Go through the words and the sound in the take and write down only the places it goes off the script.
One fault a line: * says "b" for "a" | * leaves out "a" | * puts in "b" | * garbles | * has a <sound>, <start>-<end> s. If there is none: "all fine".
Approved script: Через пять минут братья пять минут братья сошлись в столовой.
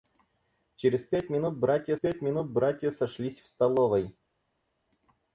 all fine